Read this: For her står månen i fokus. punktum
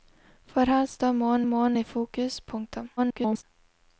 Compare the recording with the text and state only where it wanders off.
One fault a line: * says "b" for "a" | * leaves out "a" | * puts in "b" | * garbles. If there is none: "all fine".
* puts in "månen"
* garbles